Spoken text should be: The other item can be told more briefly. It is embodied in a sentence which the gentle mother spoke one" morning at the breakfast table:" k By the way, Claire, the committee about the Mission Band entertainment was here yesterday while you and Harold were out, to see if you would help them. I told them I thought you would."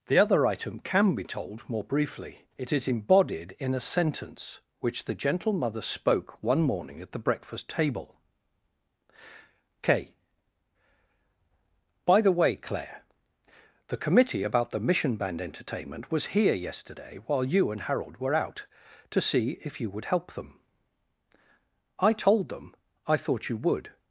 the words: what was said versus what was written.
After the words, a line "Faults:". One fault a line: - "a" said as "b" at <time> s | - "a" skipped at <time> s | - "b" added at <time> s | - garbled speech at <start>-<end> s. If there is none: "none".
The other item can be told more briefly. It is embodied in a sentence which the gentle mother spoke one" morning at the breakfast table:" k By the way, Claire, the committee about the Mission Band entertainment was here yesterday while you and Harold were out, to see if you would help them. I told them I thought you would."
Faults:
none